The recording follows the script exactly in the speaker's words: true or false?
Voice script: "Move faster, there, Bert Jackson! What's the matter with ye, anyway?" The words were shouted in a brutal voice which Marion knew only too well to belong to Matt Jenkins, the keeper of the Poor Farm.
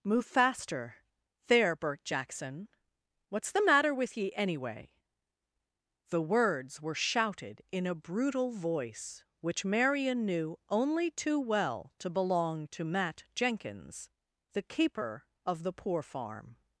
true